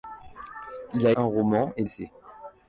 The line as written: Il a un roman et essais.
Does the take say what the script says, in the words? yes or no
yes